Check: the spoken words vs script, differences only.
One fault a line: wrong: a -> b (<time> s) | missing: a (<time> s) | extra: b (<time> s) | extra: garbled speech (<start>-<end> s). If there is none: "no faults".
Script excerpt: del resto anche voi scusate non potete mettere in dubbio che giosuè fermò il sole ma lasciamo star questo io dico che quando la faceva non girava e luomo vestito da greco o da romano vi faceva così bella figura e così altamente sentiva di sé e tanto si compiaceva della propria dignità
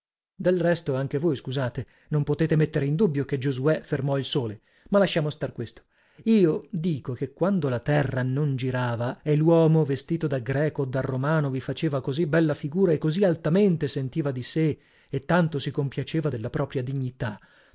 wrong: faceva -> terra (7.8 s)